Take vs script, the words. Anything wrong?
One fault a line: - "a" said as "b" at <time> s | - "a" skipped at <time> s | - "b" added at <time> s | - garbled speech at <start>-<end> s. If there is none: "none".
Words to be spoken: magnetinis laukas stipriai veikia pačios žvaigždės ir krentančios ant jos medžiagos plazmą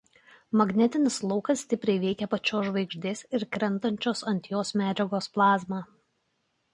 none